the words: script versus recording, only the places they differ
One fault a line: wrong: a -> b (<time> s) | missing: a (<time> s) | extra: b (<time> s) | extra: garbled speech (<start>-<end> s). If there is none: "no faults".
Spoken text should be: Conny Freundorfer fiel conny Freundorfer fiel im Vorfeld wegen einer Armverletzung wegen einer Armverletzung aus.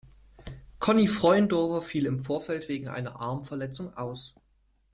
missing: conny Freundorfer fiel (2.1 s)
missing: wegen einer Armverletzung (3.9 s)